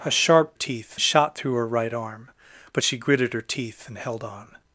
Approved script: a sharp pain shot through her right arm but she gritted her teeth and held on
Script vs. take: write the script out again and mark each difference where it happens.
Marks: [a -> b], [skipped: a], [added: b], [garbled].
a sharp [pain -> teeth] shot through her right arm but she gritted her teeth and held on